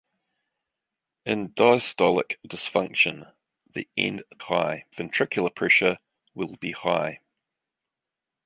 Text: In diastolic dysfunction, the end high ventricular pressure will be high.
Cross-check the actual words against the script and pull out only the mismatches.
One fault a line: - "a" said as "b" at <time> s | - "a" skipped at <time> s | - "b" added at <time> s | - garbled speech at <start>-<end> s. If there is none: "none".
none